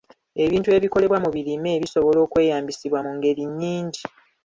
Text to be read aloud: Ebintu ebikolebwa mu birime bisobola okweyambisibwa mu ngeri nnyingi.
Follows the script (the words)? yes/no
yes